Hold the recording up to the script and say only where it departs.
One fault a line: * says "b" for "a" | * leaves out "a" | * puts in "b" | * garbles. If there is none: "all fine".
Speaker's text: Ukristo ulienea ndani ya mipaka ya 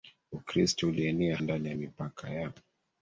all fine